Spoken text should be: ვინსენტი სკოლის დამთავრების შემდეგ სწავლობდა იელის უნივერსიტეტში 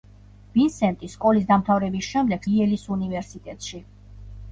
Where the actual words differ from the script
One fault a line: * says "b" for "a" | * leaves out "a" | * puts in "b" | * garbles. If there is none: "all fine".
* leaves out "სწავლობდა"